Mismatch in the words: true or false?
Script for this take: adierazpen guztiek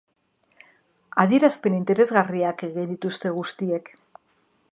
true